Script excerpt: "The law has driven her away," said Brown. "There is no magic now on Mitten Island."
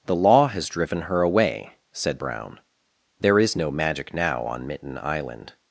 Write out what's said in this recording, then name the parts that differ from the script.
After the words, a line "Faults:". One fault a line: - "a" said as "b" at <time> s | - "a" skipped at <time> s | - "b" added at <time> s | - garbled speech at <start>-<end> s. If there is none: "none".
"The law has driven her away," said Brown. "There is no magic now on Mitten Island."
Faults:
none